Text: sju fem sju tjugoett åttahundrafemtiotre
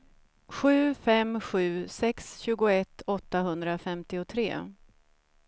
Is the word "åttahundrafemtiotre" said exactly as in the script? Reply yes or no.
yes